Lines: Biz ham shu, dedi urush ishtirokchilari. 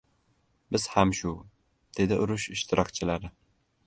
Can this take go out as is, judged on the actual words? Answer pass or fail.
pass